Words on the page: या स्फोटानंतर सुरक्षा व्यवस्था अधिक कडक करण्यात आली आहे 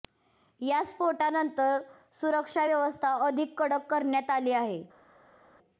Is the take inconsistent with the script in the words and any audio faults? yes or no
no